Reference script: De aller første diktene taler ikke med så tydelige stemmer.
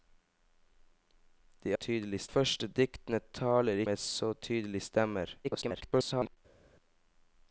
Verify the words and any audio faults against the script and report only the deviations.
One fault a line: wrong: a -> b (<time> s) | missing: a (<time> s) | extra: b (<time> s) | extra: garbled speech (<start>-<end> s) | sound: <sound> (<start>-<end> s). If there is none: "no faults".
wrong: aller -> tydelige (1.7 s)
missing: ikke (3.8 s)
extra: garbled speech (5.4-6.4 s)